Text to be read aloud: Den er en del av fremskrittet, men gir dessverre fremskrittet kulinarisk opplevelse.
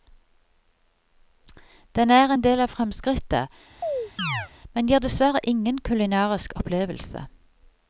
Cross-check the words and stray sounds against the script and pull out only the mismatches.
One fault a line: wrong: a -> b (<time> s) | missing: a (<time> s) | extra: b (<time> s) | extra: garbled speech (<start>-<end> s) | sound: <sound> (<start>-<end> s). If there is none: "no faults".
sound: chirp (3.8-4.5 s)
wrong: fremskrittet -> ingen (5.5 s)